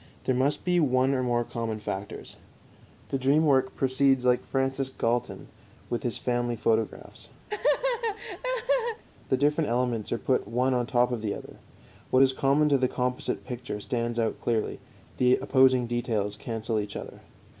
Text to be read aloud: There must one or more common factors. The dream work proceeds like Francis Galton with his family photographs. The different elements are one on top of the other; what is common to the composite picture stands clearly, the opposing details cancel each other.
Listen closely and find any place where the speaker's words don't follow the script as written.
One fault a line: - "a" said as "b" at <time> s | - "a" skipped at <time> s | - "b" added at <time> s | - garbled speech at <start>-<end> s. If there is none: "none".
- "be" added at 0.7 s
- "put" added at 10.2 s
- "out" added at 14.2 s